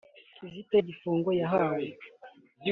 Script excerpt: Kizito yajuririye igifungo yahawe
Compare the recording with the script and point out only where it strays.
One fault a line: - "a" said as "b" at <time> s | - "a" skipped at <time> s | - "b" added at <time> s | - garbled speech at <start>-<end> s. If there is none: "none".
- "yajuririye" skipped at 0.8 s